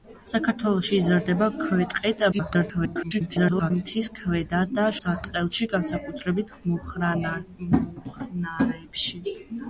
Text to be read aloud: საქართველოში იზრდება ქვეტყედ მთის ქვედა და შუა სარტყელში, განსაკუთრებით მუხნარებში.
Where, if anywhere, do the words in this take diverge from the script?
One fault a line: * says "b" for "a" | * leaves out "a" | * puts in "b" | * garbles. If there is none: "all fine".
* garbles
* leaves out "შუა"